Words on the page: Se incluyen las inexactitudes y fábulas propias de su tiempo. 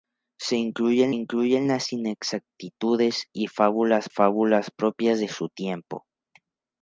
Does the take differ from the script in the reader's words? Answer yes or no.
yes